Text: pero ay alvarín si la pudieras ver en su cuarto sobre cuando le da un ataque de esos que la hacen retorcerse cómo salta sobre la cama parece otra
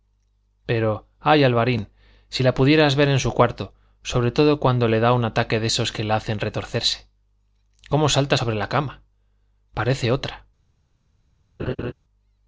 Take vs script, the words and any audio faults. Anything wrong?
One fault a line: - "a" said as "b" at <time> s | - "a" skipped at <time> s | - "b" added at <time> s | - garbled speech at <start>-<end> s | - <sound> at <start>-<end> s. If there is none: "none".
- "todo" added at 4.3 s
- laugh at 11.6-11.9 s